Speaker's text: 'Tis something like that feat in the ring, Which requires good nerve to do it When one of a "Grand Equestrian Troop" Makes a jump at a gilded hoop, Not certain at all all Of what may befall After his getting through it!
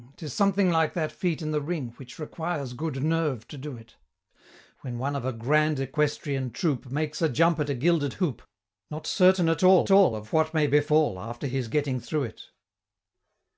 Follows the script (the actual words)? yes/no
yes